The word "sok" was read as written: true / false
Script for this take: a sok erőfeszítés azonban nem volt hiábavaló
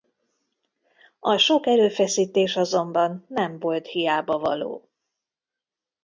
true